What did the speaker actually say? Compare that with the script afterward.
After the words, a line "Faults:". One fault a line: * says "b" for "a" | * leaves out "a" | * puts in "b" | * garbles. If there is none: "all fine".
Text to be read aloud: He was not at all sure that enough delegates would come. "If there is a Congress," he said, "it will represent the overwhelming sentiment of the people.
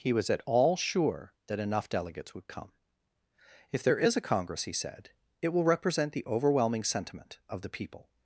He was at all sure that enough delegates would come. "If there is a Congress," he said, "it will represent the overwhelming sentiment of the people.
Faults:
* leaves out "not"